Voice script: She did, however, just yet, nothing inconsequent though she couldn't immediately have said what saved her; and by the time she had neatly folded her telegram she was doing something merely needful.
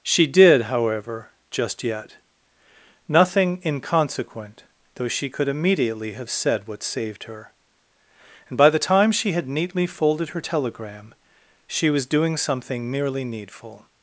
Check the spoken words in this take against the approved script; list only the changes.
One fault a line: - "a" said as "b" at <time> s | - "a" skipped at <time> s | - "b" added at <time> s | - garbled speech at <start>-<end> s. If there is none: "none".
- "couldn't" said as "could" at 5.3 s